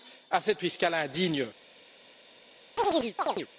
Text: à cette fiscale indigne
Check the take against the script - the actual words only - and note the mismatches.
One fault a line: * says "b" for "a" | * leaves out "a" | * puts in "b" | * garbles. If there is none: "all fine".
all fine